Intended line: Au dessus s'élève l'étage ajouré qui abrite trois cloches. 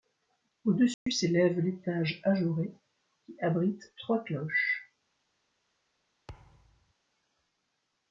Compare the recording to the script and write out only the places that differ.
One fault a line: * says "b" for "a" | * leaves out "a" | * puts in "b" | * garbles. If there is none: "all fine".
all fine